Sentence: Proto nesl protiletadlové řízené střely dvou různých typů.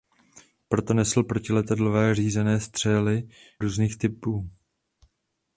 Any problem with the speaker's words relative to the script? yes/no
yes